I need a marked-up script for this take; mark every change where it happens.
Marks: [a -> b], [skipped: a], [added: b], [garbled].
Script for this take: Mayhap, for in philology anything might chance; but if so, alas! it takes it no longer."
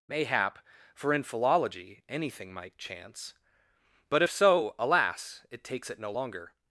Mayhap, for in philology anything might chance; but if so, alas! it takes it no longer."